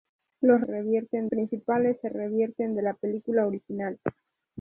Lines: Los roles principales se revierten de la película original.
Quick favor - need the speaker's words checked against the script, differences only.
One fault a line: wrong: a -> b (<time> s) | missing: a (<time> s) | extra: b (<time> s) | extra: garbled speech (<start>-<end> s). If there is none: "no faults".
wrong: roles -> revierten (0.6 s)